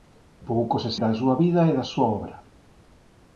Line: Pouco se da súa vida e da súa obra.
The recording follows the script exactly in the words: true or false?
true